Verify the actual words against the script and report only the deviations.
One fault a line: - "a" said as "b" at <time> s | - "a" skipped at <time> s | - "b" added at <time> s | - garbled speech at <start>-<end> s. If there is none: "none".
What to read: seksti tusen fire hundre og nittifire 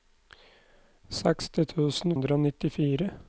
- "fire" skipped at 2.2 s